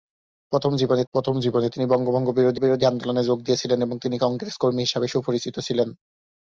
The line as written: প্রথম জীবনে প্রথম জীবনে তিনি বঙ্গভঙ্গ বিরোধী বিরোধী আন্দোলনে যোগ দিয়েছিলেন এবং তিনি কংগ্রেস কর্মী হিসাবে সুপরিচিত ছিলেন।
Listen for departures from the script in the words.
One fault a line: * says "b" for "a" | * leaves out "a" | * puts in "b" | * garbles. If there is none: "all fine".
all fine